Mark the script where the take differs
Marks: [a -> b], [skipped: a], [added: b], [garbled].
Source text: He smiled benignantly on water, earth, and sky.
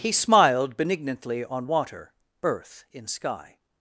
He smiled benignantly on water, earth, [and -> in] sky.